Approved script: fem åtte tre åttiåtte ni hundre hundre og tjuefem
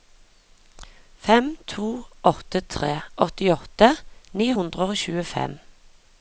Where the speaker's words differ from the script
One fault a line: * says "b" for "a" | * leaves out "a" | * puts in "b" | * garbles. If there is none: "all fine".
* puts in "to"
* leaves out "hundre"